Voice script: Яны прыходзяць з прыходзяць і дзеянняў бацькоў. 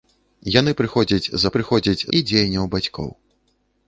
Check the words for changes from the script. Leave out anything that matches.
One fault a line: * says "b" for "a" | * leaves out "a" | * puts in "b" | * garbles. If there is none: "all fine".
all fine